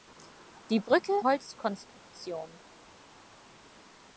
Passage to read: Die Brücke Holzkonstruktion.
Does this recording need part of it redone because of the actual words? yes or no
no